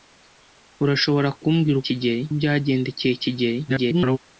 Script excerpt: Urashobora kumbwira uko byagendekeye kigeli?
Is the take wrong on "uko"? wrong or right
wrong